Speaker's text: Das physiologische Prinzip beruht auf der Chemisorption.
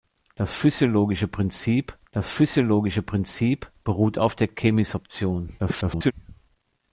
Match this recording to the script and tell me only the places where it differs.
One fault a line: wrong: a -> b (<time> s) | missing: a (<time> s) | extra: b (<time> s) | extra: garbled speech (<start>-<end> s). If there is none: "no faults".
extra: das physiologische Prinzip (2.1 s)
extra: garbled speech (5.6-6.1 s)